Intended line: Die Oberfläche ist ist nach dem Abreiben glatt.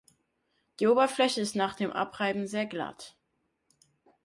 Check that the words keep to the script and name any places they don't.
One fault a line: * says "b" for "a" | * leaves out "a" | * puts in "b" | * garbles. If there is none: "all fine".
* leaves out "ist"
* puts in "sehr"